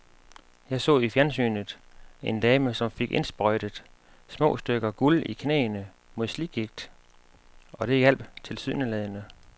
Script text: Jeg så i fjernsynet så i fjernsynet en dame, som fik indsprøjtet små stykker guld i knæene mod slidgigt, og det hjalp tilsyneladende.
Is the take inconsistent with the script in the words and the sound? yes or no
yes